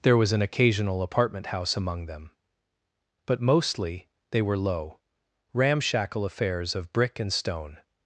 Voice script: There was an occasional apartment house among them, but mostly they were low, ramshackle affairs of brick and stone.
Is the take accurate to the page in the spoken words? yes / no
yes